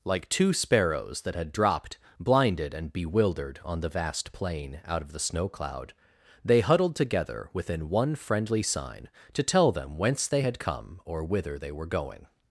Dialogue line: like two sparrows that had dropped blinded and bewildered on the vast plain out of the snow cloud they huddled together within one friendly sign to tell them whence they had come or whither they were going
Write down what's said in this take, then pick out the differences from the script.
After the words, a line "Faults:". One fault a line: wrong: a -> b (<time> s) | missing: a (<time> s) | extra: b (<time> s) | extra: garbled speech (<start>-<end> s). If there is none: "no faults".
like two sparrows that had dropped blinded and bewildered on the vast plain out of the snow cloud they huddled together within one friendly sign to tell them whence they had come or whither they were going
Faults:
no faults